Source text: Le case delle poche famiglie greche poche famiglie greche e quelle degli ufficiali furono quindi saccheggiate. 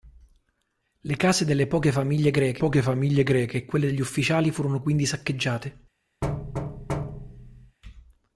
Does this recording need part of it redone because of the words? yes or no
no